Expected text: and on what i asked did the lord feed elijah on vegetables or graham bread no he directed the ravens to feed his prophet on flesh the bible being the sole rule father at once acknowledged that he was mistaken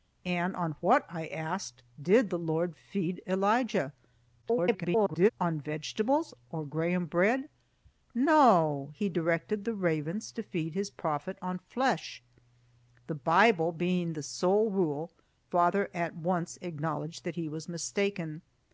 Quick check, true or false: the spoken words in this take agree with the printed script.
false